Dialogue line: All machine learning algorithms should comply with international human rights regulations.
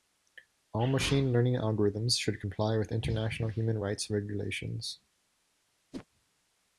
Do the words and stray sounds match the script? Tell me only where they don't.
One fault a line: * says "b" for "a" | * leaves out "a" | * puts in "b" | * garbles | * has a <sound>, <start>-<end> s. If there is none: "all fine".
* has a whoosh, 5.9-6.1 s